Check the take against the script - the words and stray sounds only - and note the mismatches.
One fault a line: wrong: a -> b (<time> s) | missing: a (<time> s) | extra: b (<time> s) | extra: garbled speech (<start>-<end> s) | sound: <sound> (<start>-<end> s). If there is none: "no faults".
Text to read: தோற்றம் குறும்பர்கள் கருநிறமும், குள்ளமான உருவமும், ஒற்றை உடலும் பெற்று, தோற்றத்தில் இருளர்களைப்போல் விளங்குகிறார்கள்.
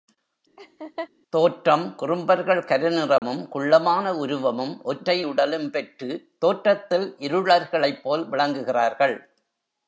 sound: laugh (0.6-1.1 s)
sound: dropout (3.2-3.2 s)